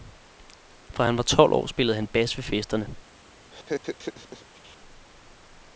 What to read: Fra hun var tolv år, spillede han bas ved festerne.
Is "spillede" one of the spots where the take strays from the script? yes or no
no